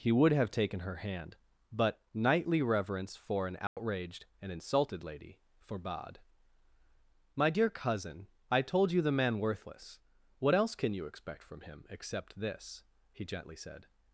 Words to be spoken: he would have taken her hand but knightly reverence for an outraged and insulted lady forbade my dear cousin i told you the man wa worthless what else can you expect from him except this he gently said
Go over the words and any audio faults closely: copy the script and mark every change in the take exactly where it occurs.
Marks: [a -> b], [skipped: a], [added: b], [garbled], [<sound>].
he would have taken her hand but knightly reverence for an outraged [dropout] and insulted lady forbade my dear cousin i told you the man [skipped: wa] worthless what else can you expect from him except this he gently said